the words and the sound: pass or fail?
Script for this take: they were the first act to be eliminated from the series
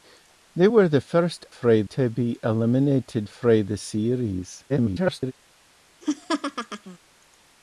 fail